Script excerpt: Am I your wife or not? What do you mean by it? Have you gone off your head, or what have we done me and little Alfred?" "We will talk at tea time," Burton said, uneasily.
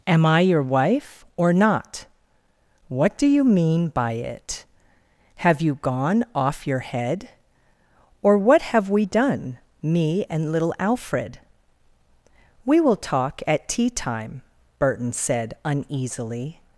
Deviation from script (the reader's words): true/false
false